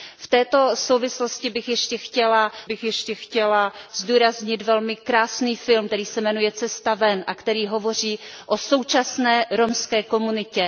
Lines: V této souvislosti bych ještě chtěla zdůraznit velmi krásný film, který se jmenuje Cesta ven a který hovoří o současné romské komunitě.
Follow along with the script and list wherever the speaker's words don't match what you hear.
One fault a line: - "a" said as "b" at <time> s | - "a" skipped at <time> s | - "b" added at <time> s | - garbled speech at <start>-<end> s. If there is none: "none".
- "bych ještě chtěla" added at 2.6 s